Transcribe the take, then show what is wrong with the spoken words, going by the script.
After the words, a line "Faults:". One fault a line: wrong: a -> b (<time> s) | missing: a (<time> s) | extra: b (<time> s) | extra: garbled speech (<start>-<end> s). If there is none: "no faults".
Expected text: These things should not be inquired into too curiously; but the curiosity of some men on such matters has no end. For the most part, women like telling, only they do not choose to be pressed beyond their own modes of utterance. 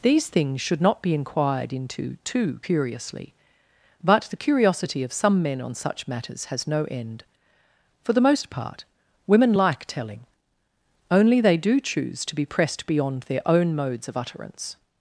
These things should not be inquired into too curiously; but the curiosity of some men on such matters has no end. For the most part, women like telling, only they do choose to be pressed beyond their own modes of utterance.
Faults:
missing: not (11.8 s)